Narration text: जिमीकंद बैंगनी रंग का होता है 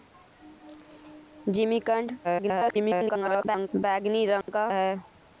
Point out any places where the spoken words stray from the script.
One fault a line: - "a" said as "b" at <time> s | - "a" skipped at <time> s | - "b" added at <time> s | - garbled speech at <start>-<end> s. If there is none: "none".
- garbled speech at 2.2-3.7 s
- "होता" skipped at 4.7 s